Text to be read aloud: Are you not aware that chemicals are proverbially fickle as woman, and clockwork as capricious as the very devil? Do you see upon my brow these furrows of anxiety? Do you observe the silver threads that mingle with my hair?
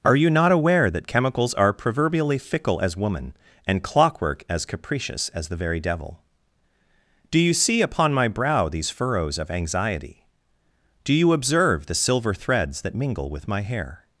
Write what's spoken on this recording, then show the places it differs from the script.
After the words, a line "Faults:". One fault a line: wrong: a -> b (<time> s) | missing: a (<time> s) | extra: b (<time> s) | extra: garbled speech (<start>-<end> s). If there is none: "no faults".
Are you not aware that chemicals are proverbially fickle as woman, and clockwork as capricious as the very devil? Do you see upon my brow these furrows of anxiety? Do you observe the silver threads that mingle with my hair?
Faults:
no faults